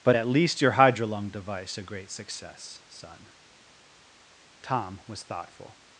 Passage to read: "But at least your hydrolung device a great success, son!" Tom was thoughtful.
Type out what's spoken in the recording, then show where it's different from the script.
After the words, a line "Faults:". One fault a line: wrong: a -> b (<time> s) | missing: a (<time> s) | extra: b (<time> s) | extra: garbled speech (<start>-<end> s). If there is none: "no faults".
"But at least your hydrolung device a great success, son!" Tom was thoughtful.
Faults:
no faults